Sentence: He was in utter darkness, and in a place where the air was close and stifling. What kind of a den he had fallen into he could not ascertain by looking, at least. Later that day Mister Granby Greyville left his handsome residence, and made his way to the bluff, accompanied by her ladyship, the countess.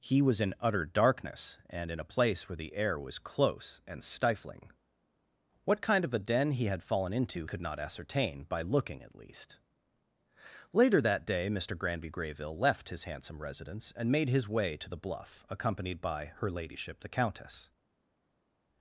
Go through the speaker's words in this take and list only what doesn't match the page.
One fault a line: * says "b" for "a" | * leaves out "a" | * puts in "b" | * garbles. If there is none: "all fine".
* leaves out "he"